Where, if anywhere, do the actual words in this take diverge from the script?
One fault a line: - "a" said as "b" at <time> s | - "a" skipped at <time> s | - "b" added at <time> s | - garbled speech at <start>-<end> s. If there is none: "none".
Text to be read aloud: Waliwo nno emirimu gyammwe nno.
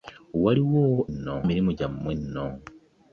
none